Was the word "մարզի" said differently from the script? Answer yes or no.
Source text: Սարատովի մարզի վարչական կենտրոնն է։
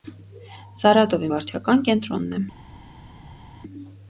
yes